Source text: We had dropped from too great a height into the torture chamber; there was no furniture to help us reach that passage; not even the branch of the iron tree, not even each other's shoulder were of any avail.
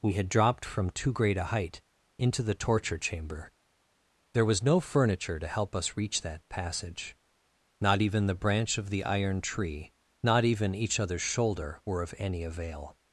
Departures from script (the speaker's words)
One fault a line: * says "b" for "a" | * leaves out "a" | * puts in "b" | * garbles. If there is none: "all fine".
all fine